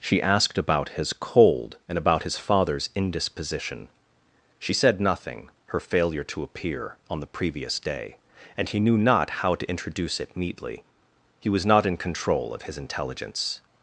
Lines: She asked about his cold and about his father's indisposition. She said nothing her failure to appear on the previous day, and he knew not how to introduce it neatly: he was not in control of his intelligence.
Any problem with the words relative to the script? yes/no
no